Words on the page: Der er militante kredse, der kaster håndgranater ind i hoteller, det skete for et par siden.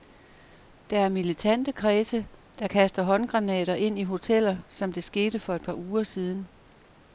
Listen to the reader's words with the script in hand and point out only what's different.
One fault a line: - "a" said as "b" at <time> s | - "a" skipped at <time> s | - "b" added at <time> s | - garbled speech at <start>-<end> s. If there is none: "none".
- "som" added at 4.7 s
- "uger" added at 5.7 s